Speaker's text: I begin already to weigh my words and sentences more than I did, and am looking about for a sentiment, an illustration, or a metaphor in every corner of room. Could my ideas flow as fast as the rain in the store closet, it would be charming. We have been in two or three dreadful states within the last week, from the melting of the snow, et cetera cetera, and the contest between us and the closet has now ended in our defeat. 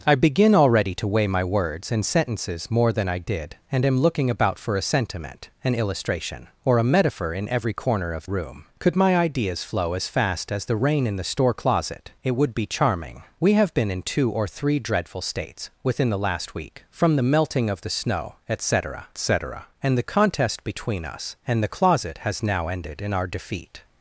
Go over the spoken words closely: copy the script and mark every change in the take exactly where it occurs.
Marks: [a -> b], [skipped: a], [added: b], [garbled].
I begin already to weigh my words and sentences more than I did, and am looking about for a sentiment, an illustration, or a metaphor in every corner of room. Could my ideas flow as fast as the rain in the store closet, it would be charming. We have been in two or three dreadful states within the last week, from the melting of the snow, et cetera cetera, and the contest between us and the closet has now ended in our defeat.